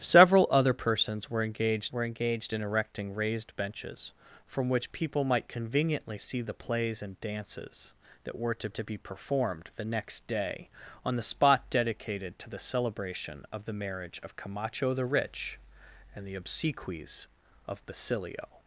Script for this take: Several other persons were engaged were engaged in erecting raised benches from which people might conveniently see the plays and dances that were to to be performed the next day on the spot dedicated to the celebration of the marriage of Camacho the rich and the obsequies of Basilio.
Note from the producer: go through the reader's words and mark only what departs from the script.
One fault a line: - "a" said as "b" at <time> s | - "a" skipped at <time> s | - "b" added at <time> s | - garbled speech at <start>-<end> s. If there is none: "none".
none